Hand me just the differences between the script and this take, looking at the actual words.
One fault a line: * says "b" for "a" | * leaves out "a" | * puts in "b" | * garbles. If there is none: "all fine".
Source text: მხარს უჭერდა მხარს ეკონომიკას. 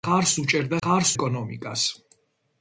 all fine